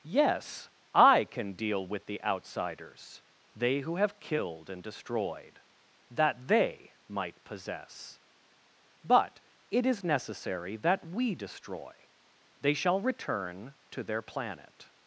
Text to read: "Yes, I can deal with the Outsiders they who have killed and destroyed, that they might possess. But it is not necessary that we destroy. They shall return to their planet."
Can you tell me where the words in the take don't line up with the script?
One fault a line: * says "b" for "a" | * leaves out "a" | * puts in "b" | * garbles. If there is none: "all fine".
* leaves out "not"